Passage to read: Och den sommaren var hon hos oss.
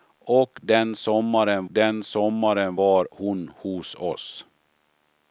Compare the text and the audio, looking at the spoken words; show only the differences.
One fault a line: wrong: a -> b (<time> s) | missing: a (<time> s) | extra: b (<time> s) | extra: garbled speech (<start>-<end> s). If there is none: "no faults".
extra: den sommaren (1.7 s)